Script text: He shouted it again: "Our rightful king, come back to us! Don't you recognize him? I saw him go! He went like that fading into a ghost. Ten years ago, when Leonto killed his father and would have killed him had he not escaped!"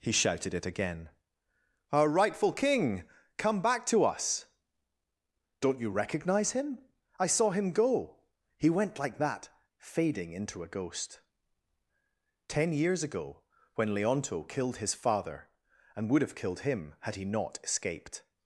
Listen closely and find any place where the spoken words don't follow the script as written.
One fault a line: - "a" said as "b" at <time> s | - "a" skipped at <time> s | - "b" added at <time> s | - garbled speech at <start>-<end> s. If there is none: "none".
none